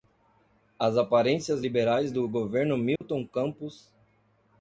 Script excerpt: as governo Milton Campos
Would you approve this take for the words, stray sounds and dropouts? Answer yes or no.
no